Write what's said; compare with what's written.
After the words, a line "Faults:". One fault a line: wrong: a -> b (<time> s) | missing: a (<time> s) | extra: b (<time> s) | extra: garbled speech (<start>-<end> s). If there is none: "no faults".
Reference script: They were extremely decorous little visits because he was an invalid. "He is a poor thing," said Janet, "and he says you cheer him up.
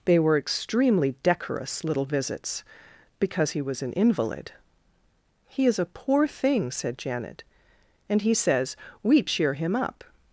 They were extremely decorous little visits because he was an invalid. "He is a poor thing," said Janet, "and he says we cheer him up.
Faults:
wrong: you -> we (9.0 s)